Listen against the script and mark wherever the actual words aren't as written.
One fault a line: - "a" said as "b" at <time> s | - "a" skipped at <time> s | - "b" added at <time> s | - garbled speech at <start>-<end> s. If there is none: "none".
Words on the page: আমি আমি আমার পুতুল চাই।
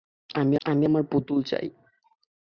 none